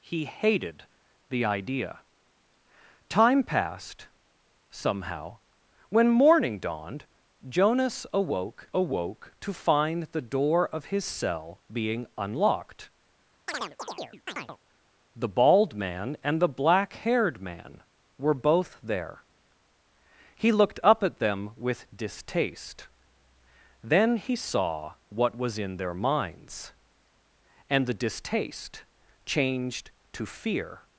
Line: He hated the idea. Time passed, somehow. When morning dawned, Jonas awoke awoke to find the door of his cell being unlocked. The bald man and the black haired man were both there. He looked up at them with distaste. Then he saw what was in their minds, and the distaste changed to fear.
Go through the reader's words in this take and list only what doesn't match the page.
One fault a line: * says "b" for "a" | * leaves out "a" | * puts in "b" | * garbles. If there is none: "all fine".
all fine